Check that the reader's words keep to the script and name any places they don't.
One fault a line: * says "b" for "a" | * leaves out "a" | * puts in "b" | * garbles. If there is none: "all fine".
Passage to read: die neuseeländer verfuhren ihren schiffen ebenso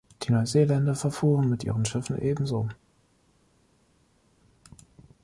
* puts in "mit"